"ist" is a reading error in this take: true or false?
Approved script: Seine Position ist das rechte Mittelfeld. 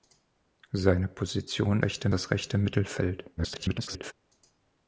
true